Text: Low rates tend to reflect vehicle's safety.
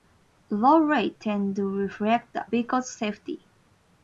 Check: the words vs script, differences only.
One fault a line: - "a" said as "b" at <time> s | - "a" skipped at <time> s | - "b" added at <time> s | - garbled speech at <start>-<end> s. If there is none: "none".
none